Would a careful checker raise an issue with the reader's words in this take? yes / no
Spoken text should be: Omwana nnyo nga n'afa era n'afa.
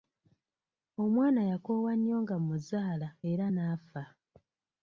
yes